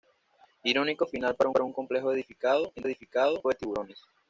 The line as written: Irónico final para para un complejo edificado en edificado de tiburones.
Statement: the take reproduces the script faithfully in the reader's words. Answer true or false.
true